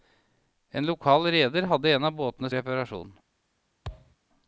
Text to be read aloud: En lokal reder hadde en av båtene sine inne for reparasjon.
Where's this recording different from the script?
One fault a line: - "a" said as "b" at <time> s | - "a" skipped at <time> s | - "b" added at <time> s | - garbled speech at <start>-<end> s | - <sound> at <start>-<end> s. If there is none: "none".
- "sine inne for" skipped at 2.5 s
- thud at 3.8-4.2 s